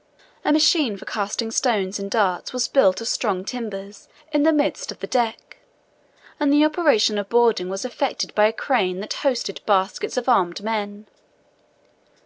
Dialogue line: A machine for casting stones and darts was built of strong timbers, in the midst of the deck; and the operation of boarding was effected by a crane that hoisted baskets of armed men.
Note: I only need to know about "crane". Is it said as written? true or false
true